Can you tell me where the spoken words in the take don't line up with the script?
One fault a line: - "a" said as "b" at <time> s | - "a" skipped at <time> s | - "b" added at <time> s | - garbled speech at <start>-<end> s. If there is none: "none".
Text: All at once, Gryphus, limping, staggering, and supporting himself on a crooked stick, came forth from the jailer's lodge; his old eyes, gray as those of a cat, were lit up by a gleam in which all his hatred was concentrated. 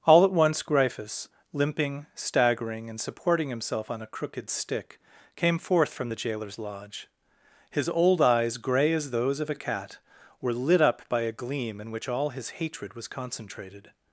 none